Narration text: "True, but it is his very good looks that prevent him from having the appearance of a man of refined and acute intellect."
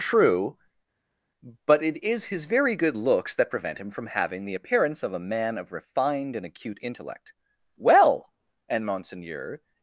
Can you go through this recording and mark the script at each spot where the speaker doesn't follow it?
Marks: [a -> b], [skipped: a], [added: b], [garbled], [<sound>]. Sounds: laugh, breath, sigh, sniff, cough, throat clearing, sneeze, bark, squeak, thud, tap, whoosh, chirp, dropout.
"True, but it is his very good looks that prevent him from having the appearance of a man of refined and acute intellect." [added: Well and monseigneur]